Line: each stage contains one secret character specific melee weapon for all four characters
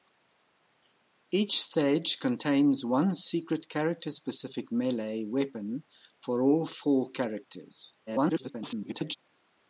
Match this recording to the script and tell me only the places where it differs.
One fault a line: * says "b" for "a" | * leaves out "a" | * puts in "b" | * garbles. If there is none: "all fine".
* garbles